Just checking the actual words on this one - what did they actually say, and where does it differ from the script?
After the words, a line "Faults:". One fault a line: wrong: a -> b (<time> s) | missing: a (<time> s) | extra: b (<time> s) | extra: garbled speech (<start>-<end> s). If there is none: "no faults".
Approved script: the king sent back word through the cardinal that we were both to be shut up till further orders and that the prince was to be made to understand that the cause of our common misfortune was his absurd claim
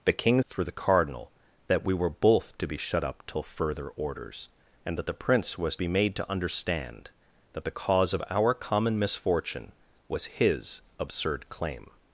the king through the cardinal that we were both to be shut up till further orders and that the prince was be made to understand that the cause of our common misfortune was his absurd claim
Faults:
missing: sent back word (0.4 s)
missing: to (5.8 s)